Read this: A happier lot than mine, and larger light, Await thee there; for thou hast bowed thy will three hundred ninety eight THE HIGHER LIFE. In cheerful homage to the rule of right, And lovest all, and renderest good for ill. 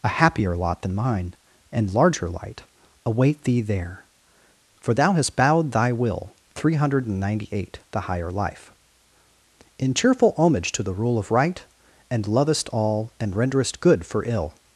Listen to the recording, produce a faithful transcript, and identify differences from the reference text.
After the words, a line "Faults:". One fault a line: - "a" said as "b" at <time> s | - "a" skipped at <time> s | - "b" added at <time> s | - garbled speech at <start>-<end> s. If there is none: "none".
A happier lot than mine, and larger light, Await thee there; for thou hast bowed thy will three hundred ninety eight THE HIGHER LIFE. In cheerful homage to the rule of right, And lovest all, and renderest good for ill.
Faults:
none